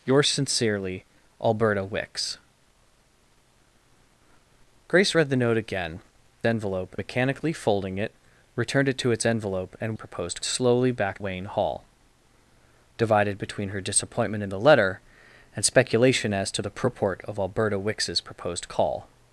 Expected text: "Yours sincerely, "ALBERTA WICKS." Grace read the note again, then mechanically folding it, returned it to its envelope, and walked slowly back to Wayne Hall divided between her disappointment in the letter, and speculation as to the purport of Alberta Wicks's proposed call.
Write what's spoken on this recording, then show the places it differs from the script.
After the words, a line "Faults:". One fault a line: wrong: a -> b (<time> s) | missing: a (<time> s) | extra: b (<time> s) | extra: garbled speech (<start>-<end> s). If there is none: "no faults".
"Yours sincerely, "ALBERTA WICKS." Grace read the note again, envelope mechanically folding it, returned it to its envelope, and proposed slowly back Wayne Hall divided between her disappointment in the letter, and speculation as to the purport of Alberta Wicks's proposed call.
Faults:
wrong: then -> envelope (6.4 s)
wrong: walked -> proposed (9.9 s)
missing: to (11.2 s)